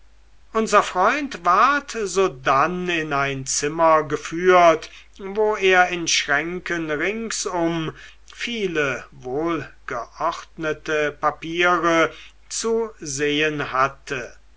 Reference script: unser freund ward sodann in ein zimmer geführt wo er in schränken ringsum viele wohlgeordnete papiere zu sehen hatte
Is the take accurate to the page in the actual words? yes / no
yes